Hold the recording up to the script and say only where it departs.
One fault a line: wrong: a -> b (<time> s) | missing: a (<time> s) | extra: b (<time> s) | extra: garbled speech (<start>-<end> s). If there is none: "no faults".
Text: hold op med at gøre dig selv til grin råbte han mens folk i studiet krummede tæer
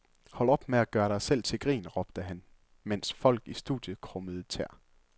no faults